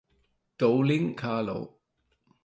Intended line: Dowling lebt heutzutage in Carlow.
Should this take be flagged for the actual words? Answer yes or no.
yes